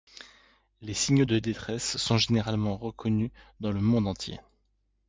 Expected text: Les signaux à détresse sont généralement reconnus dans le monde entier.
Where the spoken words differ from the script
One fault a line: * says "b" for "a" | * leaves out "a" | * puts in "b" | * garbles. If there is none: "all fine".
* says "de" for "à"